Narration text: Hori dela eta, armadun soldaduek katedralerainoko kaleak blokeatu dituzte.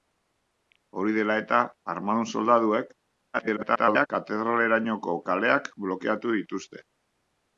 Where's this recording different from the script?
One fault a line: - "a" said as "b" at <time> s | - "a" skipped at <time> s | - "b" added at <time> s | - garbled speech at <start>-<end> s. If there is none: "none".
- garbled speech at 3.3-4.1 s